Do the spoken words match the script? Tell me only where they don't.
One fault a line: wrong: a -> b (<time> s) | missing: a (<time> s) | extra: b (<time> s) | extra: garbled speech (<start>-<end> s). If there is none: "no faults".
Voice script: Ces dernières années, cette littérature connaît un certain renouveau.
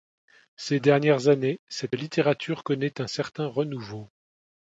no faults